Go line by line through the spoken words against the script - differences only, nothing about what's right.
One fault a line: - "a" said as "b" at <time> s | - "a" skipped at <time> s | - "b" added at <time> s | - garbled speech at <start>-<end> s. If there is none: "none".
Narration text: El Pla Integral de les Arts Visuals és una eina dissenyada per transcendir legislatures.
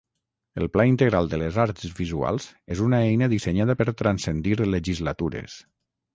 none